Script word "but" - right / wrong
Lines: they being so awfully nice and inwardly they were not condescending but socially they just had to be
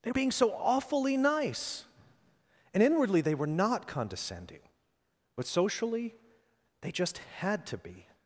right